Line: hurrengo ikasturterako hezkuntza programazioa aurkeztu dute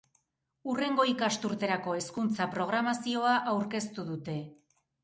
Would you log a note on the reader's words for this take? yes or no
no